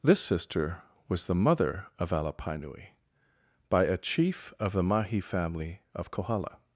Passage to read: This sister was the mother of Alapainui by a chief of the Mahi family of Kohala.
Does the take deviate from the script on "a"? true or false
false